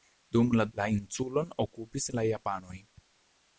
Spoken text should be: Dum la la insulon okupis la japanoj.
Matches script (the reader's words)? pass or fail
pass